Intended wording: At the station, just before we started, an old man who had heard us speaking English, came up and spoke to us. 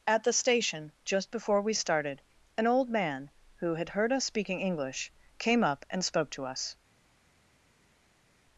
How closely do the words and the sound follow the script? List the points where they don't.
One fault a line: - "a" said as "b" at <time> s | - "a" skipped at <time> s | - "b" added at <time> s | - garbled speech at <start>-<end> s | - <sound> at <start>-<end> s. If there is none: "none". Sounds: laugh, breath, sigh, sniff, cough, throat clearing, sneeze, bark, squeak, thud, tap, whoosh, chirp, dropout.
none